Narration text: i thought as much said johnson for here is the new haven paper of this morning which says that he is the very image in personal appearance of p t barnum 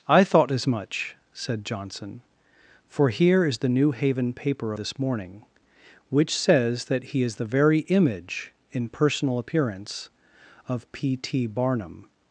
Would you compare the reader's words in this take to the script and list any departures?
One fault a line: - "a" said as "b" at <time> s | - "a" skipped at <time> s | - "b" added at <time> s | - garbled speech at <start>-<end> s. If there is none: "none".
- "of" skipped at 4.7 s